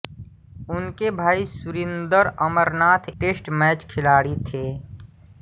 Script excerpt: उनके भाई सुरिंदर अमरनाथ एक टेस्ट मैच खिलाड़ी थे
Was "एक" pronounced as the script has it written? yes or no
no